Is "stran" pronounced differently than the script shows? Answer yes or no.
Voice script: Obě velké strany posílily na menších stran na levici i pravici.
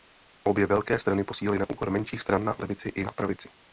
no